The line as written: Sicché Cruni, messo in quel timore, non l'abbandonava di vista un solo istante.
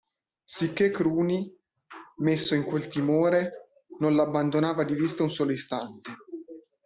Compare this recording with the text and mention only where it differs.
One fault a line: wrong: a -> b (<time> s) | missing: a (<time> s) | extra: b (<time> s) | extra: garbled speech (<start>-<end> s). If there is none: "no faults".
no faults